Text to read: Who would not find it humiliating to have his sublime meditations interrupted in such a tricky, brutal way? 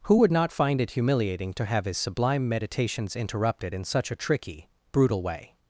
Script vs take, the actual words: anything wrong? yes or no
no